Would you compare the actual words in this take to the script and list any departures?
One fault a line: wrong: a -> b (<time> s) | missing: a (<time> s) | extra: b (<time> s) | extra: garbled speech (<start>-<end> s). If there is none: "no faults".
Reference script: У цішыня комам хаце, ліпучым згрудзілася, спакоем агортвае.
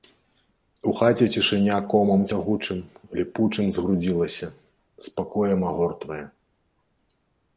extra: хаце (1.0 s)
wrong: хаце -> цягучым (2.3 s)